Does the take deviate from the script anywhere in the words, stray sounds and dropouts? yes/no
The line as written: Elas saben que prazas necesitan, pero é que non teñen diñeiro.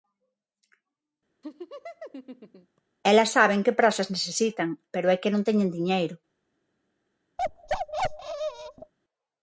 yes